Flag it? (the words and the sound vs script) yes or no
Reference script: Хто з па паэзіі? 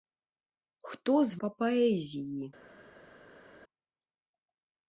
no